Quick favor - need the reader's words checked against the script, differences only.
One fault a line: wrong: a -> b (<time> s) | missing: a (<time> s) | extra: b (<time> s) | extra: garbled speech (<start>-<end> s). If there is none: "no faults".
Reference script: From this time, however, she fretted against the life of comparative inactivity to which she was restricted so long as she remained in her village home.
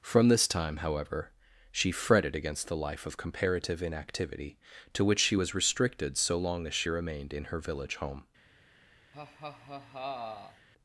no faults